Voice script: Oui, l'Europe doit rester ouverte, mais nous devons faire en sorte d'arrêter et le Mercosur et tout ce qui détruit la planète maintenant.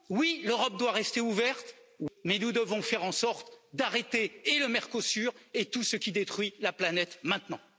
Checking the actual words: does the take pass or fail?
pass